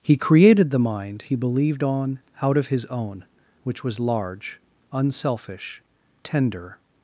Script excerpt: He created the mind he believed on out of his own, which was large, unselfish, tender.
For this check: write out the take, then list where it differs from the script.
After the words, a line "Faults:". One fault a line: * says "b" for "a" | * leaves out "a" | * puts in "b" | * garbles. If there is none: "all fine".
He created the mind he believed on out of his own, which was large, unselfish, tender.
Faults:
all fine